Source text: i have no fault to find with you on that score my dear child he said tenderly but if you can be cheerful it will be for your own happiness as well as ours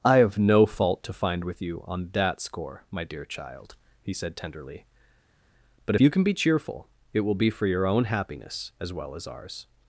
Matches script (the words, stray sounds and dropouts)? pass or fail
fail